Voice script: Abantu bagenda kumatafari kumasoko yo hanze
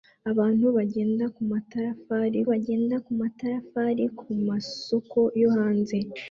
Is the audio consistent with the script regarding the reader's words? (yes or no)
no